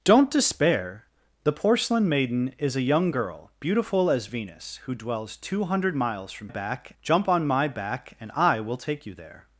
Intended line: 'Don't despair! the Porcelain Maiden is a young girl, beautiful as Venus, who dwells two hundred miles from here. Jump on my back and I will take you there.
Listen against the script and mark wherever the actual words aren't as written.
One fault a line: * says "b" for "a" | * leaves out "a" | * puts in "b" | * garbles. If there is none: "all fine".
* says "back" for "here"